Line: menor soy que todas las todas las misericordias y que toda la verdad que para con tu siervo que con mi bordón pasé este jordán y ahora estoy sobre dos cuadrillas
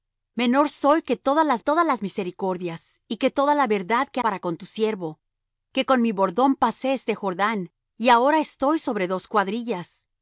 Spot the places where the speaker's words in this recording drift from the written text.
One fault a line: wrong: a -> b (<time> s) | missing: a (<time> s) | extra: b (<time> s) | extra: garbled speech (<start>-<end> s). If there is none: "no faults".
no faults